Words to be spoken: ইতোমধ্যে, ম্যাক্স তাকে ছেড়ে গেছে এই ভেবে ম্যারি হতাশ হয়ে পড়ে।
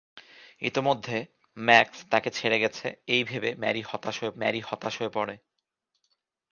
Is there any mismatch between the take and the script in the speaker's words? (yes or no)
yes